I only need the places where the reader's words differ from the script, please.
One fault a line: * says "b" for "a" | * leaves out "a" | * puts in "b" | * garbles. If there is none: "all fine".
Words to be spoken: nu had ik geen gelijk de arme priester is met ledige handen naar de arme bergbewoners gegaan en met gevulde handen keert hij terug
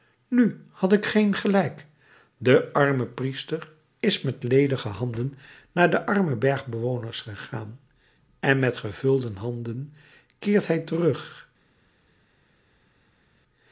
all fine